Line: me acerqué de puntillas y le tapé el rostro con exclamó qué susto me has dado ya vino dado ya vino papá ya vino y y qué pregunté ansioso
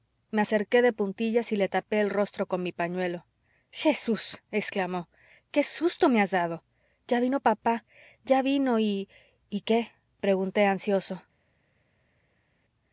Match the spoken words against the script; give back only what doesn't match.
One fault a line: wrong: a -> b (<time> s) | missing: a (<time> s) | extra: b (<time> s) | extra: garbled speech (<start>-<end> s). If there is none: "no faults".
extra: mi pañuelo jesús (2.6 s)
missing: dado ya vino (7.4 s)